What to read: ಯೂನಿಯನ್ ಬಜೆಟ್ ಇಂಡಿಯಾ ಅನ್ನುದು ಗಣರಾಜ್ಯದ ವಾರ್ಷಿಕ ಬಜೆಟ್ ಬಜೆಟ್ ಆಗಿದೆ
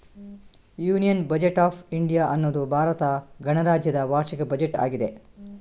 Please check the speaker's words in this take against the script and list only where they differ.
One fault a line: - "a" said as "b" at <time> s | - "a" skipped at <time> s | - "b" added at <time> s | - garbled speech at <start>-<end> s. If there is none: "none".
- "ಆಫ್" added at 1.6 s
- "ಭಾರತ" added at 2.7 s
- "ಬಜೆಟ್" skipped at 4.8 s